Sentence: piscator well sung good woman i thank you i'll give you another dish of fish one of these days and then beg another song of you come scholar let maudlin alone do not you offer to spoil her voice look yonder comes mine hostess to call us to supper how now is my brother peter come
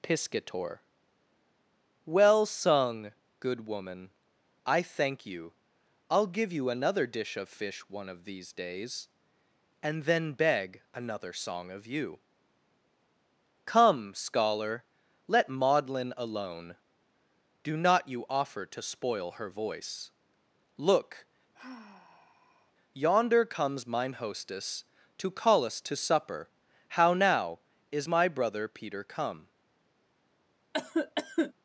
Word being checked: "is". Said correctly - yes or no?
yes